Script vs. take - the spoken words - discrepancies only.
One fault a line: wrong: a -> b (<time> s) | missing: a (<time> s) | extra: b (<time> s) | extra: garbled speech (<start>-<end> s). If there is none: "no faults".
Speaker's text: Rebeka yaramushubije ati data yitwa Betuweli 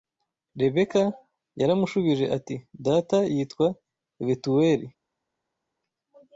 no faults